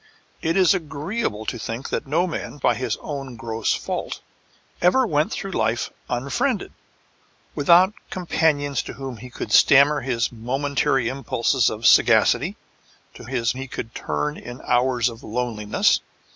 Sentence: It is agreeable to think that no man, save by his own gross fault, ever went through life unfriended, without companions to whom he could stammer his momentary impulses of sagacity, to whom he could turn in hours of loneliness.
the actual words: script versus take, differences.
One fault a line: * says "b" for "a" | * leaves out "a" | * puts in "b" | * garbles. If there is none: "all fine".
* leaves out "save"
* says "his" for "whom"